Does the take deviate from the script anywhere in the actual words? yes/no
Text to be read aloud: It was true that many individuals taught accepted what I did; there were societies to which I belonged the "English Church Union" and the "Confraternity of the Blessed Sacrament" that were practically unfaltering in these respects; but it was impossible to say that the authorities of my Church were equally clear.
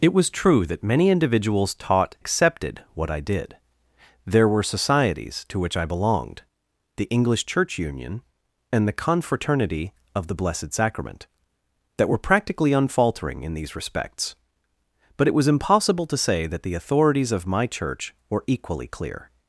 no